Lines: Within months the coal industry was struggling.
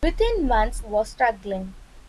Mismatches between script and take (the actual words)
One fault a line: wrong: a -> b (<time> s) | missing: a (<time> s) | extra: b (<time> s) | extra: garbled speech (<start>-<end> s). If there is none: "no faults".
missing: the coal industry (0.8 s)